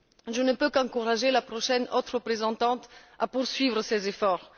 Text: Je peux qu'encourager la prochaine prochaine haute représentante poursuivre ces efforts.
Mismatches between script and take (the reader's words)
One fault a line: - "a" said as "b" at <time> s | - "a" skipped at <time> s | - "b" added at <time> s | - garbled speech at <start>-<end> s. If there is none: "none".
- "ne" added at 0.4 s
- "prochaine" skipped at 1.9 s
- "à" added at 3.2 s